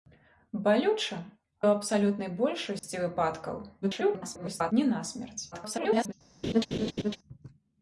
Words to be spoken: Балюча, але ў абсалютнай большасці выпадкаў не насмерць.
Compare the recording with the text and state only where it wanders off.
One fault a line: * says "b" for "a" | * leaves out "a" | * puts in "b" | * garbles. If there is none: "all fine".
* leaves out "але"
* garbles
* garbles